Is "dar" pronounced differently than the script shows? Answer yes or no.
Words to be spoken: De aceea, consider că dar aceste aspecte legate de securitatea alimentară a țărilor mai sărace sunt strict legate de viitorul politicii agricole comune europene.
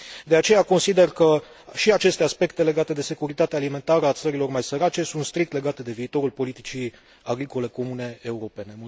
yes